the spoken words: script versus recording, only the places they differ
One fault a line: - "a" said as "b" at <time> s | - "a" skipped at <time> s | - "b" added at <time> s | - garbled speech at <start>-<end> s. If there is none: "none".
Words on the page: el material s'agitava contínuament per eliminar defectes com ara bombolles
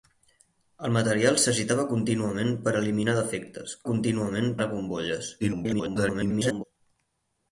- "com" said as "contínuament" at 3.9 s
- garbled speech at 5.4-6.6 s